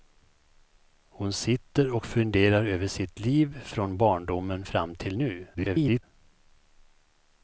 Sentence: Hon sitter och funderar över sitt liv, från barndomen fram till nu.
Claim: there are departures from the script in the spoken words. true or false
true